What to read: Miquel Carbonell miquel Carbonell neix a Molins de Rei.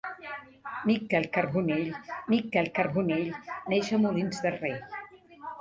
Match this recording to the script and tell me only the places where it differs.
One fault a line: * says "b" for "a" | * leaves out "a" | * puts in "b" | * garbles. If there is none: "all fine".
all fine